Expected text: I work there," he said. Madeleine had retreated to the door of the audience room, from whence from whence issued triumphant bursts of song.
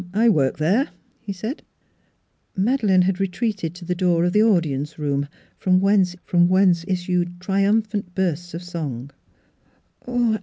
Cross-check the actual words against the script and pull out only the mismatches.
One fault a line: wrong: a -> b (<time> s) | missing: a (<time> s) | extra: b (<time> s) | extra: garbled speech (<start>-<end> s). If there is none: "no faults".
no faults